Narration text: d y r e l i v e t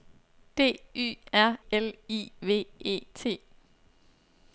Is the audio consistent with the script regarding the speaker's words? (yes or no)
no